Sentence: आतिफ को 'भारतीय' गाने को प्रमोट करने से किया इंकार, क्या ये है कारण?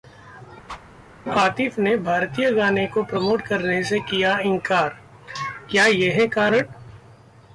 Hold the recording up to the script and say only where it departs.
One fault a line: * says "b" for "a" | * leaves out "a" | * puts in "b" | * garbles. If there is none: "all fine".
* says "ने" for "को"